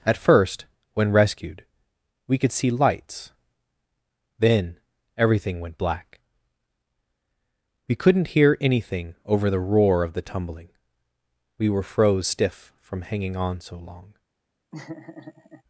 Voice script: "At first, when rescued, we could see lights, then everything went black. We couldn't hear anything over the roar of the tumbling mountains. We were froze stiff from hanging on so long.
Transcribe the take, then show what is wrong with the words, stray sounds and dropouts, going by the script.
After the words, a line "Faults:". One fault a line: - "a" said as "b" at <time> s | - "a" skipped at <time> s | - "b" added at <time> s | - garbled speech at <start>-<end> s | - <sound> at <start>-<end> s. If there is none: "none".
"At first, when rescued, we could see lights, then everything went black. We couldn't hear anything over the roar of the tumbling. We were froze stiff from hanging on so long.
Faults:
- "mountains" skipped at 10.7 s
- laugh at 14.7-15.6 s